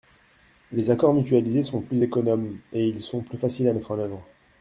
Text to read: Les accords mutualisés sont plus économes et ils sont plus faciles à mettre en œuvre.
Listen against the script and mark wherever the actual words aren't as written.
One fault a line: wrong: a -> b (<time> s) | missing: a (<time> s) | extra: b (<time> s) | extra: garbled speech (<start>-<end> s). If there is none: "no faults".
no faults